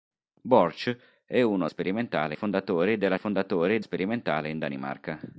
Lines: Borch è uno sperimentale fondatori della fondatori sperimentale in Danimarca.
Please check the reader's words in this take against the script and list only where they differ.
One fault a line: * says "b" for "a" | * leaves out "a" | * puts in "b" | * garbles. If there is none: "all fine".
all fine